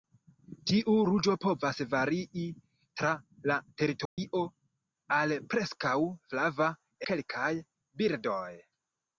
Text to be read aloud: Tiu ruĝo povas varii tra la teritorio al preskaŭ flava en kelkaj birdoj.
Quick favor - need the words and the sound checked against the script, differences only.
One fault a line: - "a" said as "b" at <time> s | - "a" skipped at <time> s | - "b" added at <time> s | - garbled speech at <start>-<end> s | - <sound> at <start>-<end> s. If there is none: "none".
- dropout at 4.1-4.2 s
- "en" skipped at 6.8 s